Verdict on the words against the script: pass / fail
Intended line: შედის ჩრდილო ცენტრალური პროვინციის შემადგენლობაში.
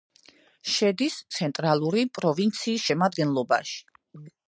fail